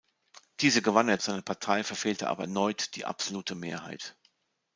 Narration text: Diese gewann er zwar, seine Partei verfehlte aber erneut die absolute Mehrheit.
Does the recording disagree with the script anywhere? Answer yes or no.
yes